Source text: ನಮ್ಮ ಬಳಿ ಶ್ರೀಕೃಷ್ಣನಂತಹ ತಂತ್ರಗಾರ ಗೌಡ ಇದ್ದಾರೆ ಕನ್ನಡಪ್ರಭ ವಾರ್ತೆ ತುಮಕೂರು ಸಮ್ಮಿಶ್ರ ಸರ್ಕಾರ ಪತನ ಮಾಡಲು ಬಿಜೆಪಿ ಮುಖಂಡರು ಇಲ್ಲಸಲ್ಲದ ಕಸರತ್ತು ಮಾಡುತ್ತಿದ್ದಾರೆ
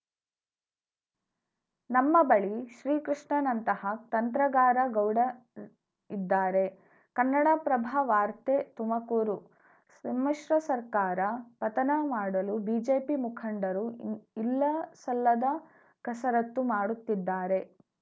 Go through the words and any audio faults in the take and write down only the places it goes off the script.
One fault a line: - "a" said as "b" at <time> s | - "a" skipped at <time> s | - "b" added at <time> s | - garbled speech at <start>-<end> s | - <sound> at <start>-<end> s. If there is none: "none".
none